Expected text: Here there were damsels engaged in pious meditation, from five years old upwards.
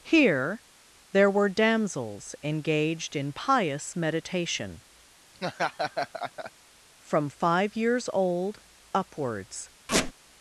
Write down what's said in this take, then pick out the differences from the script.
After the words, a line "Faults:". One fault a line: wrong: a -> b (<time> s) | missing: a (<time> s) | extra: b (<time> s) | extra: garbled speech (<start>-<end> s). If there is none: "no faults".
Here there were damsels engaged in pious meditation, from five years old upwards.
Faults:
no faults